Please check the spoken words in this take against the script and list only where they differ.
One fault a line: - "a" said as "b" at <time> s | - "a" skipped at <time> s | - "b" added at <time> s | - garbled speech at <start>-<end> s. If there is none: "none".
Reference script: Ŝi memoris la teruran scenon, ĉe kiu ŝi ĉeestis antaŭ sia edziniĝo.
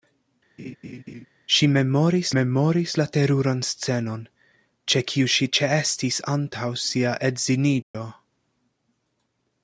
- "memoris" added at 2.3 s